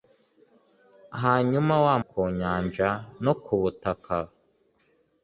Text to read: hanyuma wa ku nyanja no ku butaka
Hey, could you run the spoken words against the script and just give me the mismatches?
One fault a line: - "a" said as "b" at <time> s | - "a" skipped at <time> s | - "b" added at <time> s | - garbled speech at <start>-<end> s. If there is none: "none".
none